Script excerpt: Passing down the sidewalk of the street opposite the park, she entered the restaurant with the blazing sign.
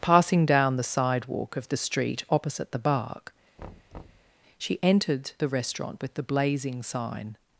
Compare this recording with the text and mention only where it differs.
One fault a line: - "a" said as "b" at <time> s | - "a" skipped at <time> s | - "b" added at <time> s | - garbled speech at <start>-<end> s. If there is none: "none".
- "park" said as "bark" at 2.8 s